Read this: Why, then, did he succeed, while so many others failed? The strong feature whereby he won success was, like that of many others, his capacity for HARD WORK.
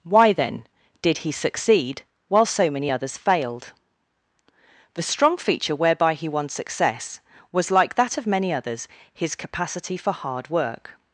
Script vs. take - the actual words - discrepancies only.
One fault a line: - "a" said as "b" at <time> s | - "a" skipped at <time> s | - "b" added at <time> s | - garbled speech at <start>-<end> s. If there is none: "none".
none